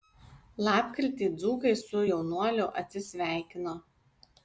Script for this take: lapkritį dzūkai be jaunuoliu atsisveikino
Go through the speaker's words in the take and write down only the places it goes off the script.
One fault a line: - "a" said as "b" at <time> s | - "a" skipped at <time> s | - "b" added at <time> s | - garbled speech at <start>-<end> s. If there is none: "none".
- "be" said as "su" at 1.8 s